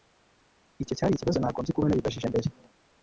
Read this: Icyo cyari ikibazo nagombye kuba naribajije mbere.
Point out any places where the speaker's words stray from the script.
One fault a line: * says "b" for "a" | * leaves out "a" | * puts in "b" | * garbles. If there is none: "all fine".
all fine